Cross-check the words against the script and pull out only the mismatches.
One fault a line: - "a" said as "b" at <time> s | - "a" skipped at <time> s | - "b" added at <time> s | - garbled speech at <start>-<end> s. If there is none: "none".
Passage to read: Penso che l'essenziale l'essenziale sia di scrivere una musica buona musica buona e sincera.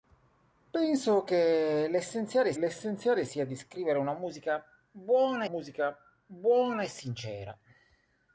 none